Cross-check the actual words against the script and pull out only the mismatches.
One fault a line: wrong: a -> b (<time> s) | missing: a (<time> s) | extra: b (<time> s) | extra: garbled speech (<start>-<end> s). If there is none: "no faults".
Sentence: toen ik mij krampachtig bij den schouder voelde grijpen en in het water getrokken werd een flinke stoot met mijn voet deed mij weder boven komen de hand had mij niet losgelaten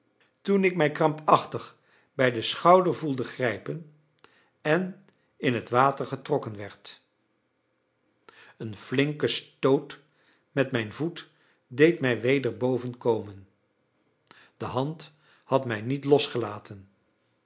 no faults